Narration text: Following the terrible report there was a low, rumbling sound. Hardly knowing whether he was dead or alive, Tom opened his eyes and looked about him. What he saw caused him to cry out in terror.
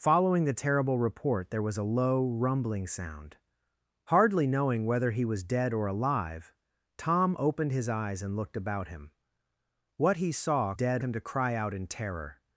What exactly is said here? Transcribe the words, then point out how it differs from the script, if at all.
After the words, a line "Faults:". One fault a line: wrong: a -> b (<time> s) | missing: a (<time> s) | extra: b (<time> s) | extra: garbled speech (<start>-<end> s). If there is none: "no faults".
Following the terrible report there was a low, rumbling sound. Hardly knowing whether he was dead or alive, Tom opened his eyes and looked about him. What he saw dead him to cry out in terror.
Faults:
wrong: caused -> dead (10.7 s)